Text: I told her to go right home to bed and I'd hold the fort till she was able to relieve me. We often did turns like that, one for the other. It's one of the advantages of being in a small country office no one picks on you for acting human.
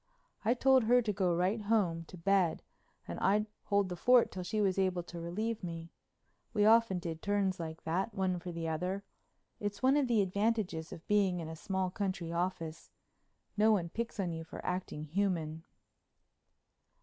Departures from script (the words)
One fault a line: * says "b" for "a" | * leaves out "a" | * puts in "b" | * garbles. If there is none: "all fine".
all fine